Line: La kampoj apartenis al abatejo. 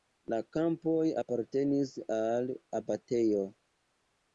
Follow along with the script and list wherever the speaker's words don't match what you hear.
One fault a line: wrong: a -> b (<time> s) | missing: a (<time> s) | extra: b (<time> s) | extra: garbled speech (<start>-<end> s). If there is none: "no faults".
no faults